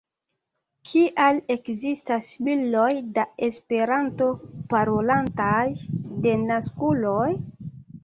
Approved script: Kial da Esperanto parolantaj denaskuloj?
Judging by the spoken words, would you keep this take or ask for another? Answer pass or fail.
fail